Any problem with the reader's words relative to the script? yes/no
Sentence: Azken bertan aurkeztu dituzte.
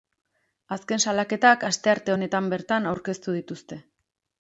yes